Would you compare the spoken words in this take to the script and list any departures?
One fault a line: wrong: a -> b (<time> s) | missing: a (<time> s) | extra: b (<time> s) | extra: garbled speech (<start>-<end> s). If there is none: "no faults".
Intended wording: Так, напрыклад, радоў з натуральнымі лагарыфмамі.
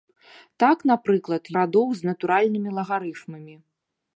no faults